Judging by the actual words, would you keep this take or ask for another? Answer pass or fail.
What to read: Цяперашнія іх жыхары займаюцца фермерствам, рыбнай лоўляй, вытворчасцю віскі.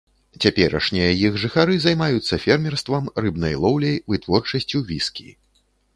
pass